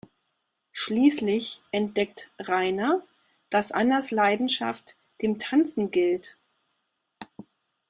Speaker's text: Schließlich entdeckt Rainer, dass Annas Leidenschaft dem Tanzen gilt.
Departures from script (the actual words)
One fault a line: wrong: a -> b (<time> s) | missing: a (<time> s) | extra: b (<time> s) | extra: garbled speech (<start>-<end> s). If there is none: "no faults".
no faults